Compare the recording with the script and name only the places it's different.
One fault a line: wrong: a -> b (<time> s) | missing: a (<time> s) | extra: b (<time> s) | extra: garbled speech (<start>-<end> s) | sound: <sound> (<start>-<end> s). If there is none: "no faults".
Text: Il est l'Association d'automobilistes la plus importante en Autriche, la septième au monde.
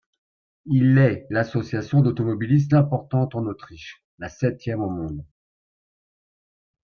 missing: la plus (2.7 s)